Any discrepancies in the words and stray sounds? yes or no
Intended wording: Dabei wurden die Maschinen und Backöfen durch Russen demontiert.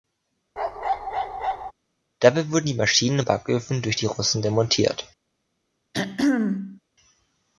yes